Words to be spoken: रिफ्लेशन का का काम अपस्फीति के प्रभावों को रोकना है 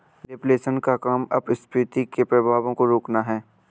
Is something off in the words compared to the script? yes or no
yes